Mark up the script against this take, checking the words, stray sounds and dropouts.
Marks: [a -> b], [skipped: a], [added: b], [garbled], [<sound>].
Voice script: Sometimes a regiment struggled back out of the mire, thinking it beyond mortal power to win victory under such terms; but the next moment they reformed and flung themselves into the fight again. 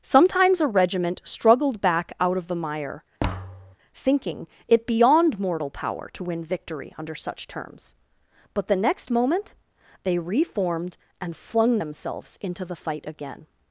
Sometimes a regiment struggled back out of the mire, [thud] thinking it beyond mortal power to win victory under such terms; but the next moment they reformed and flung themselves into the fight again.